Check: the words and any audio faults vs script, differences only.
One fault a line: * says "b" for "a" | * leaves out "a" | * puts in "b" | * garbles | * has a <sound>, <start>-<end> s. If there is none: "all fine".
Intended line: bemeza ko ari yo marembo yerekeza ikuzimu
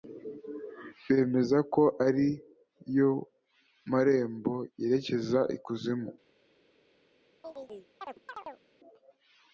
* has a chirp, 7.4-8.6 s